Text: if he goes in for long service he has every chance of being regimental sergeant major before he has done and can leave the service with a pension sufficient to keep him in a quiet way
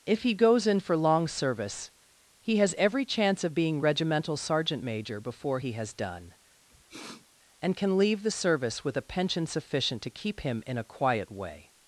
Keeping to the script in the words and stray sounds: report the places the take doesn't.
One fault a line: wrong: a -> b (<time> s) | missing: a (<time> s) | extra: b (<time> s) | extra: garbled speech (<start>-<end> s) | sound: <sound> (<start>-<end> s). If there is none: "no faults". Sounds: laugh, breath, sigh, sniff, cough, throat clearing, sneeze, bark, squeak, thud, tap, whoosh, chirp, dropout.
sound: sniff (6.7-7.3 s)